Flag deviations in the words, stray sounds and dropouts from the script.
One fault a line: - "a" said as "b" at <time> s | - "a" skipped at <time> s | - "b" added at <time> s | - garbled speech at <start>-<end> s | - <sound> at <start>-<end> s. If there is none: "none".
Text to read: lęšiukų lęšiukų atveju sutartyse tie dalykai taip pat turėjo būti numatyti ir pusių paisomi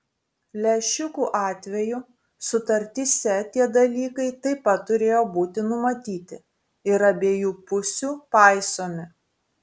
- "lęšiukų" skipped at 1.2 s
- "abiejų" added at 7.1 s